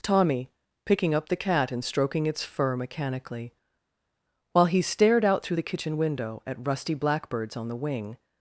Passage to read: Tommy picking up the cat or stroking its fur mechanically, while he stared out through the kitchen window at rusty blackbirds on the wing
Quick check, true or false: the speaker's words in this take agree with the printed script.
false